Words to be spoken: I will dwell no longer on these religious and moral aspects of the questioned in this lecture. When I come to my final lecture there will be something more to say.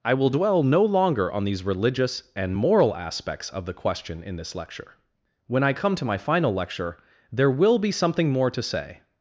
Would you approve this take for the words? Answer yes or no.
no